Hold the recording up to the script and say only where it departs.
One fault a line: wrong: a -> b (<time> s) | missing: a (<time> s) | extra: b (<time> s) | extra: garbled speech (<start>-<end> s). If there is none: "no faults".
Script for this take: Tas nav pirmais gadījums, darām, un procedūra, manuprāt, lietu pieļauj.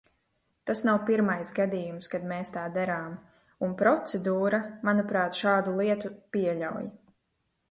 extra: kad mēs tā (2.1 s)
extra: šādu (5.4 s)